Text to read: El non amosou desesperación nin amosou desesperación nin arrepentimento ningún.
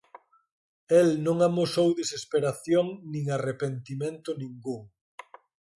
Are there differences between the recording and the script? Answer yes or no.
yes